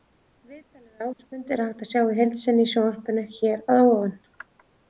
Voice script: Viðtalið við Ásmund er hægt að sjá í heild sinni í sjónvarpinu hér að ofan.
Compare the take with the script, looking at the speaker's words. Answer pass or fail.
pass